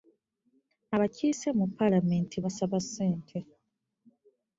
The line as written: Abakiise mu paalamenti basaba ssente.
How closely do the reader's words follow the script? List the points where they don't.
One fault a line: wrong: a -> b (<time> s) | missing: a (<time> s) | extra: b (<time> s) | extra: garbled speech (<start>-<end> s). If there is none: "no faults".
no faults